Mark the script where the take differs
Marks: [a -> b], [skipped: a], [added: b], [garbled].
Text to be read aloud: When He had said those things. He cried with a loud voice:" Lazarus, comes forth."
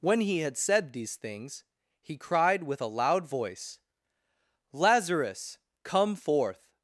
When He had said [those -> these] things. He cried with a loud voice:" Lazarus, [comes -> come] forth."